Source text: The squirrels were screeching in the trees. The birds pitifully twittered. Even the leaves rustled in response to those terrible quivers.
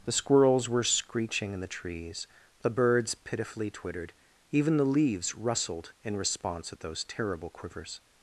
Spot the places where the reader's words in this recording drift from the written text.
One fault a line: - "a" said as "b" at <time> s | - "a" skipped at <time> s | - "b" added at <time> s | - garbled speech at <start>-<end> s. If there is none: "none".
- "to" said as "at" at 6.7 s